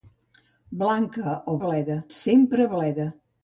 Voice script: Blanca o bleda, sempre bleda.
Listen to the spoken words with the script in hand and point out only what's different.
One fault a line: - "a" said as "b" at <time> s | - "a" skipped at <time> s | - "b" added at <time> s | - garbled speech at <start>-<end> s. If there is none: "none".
none